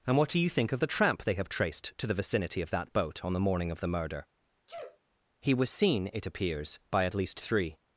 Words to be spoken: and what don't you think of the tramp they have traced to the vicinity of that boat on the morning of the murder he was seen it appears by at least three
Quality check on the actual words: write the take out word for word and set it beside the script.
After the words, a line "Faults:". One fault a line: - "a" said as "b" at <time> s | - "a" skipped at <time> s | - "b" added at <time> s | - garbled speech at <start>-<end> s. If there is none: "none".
and what do you think of the tramp they have traced to the vicinity of that boat on the morning of the murder he was seen it appears by at least three
Faults:
- "don't" said as "do" at 0.3 s